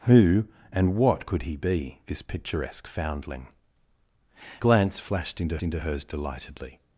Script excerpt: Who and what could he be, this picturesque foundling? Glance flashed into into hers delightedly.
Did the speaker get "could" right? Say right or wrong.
right